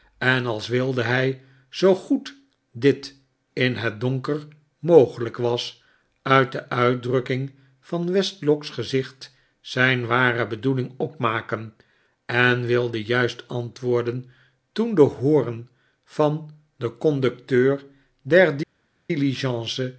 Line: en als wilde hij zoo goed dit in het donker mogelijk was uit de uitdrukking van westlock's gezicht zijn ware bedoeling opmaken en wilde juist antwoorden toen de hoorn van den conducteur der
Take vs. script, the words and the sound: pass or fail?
pass